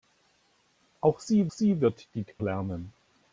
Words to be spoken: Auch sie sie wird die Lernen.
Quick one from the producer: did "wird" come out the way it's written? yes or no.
yes